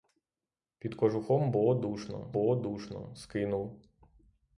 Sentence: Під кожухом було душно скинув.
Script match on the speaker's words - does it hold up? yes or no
no